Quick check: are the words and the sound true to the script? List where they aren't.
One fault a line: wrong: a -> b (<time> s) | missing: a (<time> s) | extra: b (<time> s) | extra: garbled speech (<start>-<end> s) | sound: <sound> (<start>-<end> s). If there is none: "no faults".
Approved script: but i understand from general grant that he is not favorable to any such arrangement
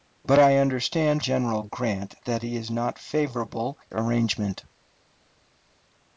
missing: from (1.2 s)
missing: to any such (3.8 s)